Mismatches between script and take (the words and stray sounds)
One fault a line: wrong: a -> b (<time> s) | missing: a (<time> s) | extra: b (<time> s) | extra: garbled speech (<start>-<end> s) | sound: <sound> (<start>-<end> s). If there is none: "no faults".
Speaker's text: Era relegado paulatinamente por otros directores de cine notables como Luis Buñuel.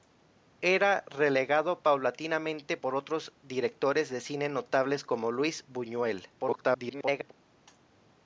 extra: garbled speech (6.4-7.3 s)